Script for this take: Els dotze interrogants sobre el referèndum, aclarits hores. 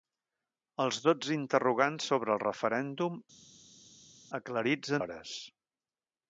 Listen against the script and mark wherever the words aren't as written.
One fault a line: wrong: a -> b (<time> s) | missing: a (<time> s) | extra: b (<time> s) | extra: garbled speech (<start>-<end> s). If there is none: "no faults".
no faults